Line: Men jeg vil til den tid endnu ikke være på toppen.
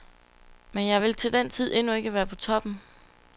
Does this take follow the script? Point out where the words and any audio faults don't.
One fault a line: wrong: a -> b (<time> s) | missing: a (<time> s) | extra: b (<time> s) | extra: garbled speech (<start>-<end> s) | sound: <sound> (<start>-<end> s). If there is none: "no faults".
no faults